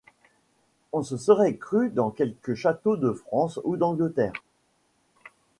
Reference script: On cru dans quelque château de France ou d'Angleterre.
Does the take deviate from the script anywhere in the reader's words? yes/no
yes